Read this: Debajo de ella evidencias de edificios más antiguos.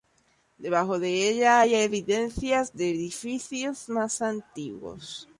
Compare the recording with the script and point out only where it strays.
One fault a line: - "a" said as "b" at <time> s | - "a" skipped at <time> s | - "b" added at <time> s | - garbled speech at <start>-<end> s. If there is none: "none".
- "hay" added at 1.6 s